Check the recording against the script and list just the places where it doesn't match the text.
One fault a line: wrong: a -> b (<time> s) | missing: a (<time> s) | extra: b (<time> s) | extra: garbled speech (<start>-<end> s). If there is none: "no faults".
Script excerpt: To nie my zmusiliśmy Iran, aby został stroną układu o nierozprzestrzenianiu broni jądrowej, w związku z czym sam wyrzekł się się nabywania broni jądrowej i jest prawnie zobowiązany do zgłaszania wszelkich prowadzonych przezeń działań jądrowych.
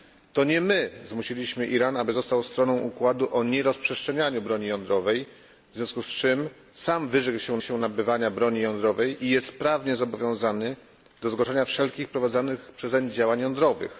no faults